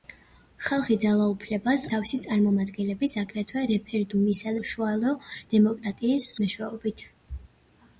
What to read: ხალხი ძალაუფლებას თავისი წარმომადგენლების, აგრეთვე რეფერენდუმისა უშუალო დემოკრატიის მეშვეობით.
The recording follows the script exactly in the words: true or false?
true